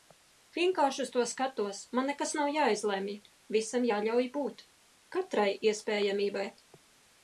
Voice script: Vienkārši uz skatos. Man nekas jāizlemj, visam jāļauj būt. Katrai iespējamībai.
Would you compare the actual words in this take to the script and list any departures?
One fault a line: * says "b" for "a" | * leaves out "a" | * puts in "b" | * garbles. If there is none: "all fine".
* puts in "to"
* puts in "nav"